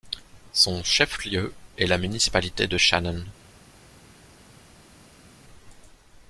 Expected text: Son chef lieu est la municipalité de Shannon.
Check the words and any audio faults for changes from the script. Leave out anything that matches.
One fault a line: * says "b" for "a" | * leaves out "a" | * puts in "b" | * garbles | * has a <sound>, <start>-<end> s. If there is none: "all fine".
all fine